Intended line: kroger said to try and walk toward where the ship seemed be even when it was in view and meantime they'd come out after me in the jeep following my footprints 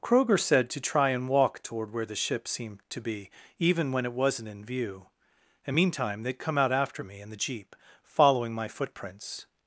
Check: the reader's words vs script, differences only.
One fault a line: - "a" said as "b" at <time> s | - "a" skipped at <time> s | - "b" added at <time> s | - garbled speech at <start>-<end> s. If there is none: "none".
- "to" added at 2.9 s
- "was" said as "wasn't" at 4.1 s